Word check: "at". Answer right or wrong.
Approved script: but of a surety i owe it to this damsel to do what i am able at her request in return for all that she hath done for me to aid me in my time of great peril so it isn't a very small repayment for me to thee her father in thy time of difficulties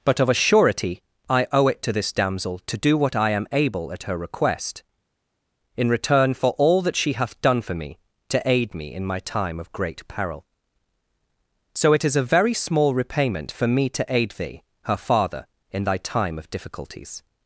right